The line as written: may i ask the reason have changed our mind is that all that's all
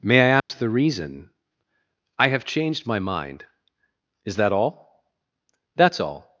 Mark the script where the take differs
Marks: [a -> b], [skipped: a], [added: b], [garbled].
may i ask the reason [added: i] have changed [our -> my] mind is that all that's all